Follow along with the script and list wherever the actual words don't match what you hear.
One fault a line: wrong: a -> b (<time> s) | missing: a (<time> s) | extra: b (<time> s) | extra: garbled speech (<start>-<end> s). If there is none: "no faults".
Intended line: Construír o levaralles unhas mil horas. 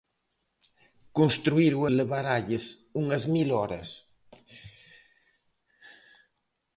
no faults